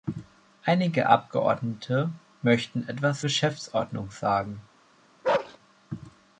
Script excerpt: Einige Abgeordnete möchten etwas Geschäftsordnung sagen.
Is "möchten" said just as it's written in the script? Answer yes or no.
yes